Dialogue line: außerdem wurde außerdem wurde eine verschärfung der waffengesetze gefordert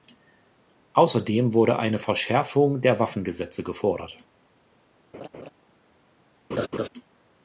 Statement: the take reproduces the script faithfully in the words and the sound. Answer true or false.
false